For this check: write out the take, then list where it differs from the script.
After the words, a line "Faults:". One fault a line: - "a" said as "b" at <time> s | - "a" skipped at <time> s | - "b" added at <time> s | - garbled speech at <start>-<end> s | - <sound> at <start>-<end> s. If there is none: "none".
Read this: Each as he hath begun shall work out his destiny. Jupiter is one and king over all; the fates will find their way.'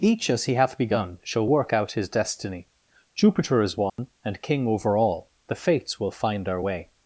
Each as he hath begun shall work out his destiny. Jupiter is one and king over all; the fates will find our way.'
Faults:
- dropout at 3.9-4.0 s
- "their" said as "our" at 6.5 s